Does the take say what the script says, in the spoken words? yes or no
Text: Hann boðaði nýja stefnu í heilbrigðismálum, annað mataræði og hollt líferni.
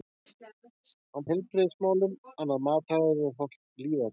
no